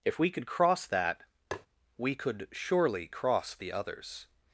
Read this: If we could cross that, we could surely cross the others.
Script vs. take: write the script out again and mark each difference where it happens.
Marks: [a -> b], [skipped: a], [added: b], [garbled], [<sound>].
If we could cross that, [tap] we could surely cross the others.